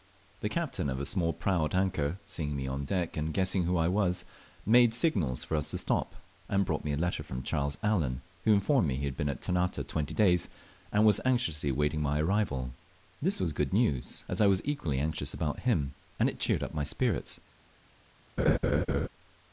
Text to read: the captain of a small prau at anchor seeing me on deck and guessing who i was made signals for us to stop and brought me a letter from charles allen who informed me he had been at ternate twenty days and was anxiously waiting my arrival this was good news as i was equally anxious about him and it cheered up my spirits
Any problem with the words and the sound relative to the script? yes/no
yes